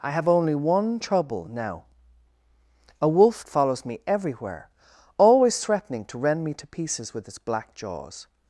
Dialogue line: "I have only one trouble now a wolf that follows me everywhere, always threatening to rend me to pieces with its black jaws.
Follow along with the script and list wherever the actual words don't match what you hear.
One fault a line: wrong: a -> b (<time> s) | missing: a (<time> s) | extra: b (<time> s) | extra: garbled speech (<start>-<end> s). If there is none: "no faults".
missing: that (3.5 s)